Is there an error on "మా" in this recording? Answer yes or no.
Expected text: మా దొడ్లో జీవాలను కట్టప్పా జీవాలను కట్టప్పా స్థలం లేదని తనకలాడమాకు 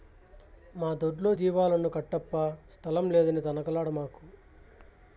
no